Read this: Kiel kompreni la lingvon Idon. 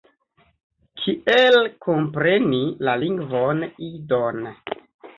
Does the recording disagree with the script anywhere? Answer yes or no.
no